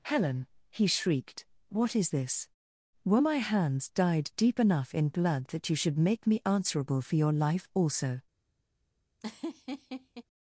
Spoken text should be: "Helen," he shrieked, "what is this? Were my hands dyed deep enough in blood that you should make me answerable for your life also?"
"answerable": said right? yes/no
yes